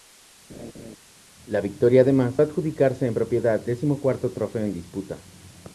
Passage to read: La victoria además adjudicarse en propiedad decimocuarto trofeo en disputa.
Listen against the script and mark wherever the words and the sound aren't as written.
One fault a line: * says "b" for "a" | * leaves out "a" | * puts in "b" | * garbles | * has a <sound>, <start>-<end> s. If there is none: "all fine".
* has a laugh, 0.5-1.0 s